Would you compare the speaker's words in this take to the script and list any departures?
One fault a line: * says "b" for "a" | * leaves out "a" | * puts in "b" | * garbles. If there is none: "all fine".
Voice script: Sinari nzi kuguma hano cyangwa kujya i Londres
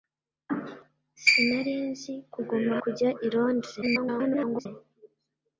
* leaves out "hano cyangwa"
* garbles